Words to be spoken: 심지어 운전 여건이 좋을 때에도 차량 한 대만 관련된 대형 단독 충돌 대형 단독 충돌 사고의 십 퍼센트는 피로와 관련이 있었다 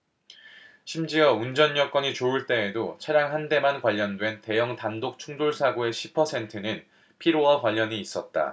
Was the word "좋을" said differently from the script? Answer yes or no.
no